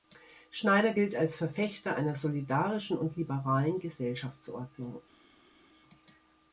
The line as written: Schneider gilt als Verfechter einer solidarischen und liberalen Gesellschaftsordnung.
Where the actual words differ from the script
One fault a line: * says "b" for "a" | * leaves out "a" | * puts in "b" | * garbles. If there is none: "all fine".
all fine